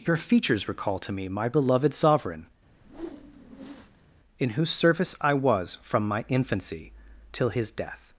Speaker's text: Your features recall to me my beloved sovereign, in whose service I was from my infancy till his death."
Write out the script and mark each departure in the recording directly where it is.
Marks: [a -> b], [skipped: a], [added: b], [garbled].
Your features recall to me my beloved sovereign, in whose service I was from my infancy till his death."